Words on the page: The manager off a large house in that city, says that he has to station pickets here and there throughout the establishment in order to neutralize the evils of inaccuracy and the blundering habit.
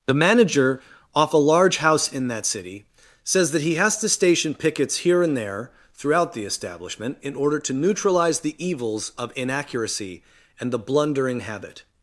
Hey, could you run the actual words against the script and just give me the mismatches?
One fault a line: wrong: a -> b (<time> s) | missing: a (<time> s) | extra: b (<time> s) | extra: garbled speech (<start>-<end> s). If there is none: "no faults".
no faults